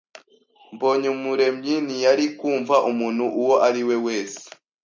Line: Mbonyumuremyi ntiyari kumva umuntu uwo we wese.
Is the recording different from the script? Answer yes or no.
yes